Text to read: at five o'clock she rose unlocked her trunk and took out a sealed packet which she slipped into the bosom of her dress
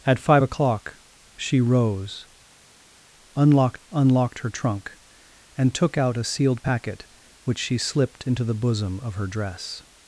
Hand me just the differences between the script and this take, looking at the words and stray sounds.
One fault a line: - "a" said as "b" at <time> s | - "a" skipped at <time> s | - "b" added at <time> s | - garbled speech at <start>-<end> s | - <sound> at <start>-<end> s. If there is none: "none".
- "unlocked" added at 3.9 s